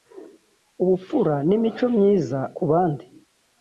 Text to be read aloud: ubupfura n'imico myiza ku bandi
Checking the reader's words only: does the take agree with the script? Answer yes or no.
yes